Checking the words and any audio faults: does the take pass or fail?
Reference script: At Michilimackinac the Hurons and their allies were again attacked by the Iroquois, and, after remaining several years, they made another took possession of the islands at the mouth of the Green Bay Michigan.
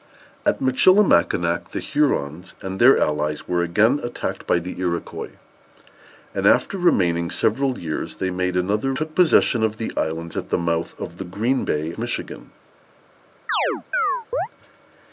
fail